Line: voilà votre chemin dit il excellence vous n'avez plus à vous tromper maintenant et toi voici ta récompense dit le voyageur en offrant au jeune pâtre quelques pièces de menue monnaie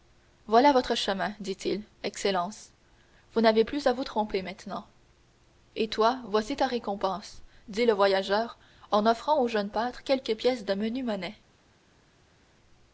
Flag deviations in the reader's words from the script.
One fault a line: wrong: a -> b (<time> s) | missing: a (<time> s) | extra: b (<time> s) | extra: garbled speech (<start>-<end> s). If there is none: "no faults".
no faults